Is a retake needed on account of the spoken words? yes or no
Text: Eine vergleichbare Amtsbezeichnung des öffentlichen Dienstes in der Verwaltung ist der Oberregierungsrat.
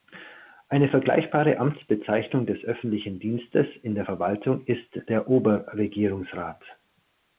no